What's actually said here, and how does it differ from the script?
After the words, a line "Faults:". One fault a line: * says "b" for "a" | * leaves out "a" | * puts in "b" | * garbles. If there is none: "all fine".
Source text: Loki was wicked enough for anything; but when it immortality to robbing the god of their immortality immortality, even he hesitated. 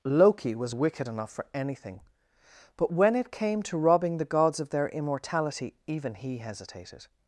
Loki was wicked enough for anything; but when it came to robbing the gods of their immortality, even he hesitated.
Faults:
* says "came" for "immortality"
* says "gods" for "god"
* leaves out "immortality"